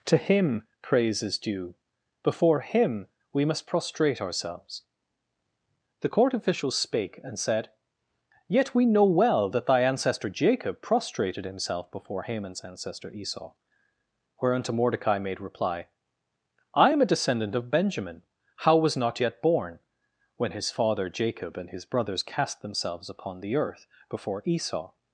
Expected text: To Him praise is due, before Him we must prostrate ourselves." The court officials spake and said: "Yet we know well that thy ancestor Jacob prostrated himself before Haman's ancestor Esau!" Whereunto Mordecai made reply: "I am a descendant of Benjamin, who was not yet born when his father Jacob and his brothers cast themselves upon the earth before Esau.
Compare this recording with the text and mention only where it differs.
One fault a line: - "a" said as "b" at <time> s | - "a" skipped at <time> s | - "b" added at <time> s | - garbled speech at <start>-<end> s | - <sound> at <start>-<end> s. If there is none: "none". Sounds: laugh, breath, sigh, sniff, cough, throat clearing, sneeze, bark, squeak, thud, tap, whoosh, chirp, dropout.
- "who" said as "how" at 18.6 s